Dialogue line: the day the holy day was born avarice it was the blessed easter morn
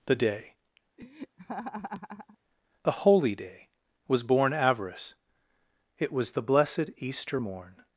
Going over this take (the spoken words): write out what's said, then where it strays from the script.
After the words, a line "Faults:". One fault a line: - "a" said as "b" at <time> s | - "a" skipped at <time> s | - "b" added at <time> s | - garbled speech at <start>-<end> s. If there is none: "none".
the day the holy day was born avarice it was the blessed easter morn
Faults:
none